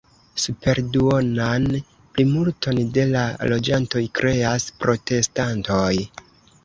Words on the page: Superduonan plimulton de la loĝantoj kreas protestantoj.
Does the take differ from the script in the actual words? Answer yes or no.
no